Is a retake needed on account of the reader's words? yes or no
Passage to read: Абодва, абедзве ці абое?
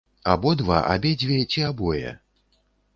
no